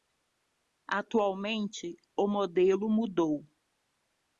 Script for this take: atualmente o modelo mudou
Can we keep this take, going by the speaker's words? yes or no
yes